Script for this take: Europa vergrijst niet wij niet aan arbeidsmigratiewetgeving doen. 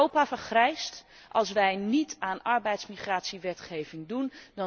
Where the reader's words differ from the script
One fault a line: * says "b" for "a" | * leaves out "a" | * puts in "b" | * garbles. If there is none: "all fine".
* says "als" for "niet"